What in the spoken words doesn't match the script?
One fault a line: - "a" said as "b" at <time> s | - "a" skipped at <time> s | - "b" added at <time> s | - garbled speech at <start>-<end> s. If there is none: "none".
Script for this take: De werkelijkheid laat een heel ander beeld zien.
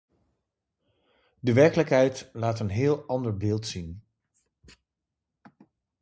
none